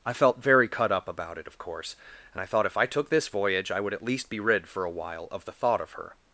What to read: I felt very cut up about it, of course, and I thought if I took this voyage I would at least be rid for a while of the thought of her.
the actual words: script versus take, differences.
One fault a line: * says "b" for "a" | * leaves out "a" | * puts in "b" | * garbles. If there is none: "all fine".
all fine